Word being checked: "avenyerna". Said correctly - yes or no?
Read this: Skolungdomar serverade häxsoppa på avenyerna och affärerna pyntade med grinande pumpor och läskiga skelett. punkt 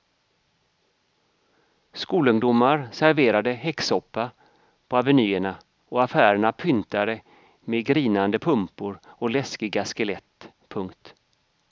yes